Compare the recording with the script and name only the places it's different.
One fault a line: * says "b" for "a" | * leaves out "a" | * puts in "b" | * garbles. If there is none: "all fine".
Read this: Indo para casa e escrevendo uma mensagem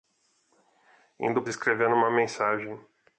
* leaves out "para casa"